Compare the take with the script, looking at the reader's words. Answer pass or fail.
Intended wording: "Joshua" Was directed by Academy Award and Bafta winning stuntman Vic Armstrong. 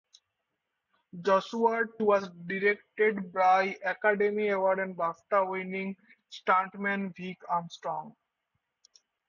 pass